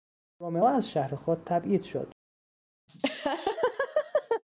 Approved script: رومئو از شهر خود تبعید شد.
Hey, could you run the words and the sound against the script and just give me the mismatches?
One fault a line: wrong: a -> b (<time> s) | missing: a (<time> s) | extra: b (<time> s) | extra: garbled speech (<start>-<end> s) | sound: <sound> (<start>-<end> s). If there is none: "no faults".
sound: laugh (2.9-4.4 s)